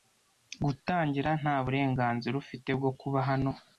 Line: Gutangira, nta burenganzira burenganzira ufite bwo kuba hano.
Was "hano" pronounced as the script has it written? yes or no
yes